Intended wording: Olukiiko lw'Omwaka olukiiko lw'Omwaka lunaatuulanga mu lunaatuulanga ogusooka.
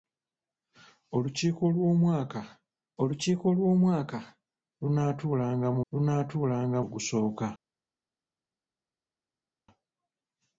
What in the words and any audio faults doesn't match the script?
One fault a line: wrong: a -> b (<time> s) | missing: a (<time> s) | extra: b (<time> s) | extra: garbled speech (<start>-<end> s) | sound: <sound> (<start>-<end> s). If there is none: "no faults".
no faults